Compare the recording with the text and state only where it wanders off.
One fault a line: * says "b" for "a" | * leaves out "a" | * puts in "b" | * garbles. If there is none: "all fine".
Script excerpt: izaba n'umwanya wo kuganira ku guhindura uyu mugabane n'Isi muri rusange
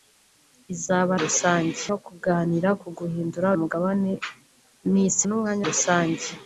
* says "rusange" for "n'umwanya"
* leaves out "uyu"
* says "n'umwanya" for "muri"